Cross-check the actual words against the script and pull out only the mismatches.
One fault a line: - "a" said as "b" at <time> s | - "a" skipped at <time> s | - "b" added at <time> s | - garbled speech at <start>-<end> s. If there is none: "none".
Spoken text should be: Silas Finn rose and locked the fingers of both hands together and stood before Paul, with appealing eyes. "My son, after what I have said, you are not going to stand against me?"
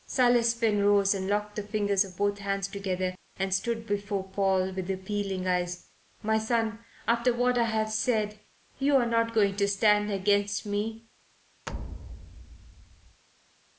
none